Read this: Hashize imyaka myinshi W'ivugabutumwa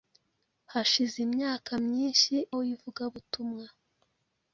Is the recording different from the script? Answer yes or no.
no